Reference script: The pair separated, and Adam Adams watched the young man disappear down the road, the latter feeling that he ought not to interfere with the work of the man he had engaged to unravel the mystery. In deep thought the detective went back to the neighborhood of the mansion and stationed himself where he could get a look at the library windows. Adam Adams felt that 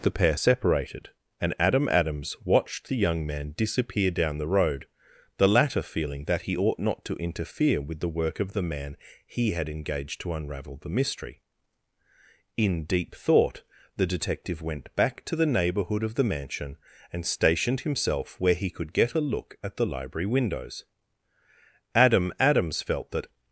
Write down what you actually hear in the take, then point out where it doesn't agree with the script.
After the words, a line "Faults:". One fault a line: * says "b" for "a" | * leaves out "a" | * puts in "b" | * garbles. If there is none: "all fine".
The pair separated, and Adam Adams watched the young man disappear down the road, the latter feeling that he ought not to interfere with the work of the man he had engaged to unravel the mystery. In deep thought the detective went back to the neighborhood of the mansion and stationed himself where he could get a look at the library windows. Adam Adams felt that
Faults:
all fine